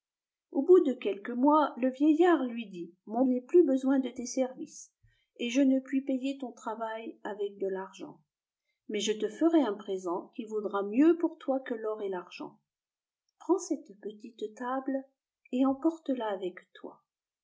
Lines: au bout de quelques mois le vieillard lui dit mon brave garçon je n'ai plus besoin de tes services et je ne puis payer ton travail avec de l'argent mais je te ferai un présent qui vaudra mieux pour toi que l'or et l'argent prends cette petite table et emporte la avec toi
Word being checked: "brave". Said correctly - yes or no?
no